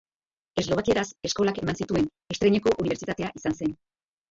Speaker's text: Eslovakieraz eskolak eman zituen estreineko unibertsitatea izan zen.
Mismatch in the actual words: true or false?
false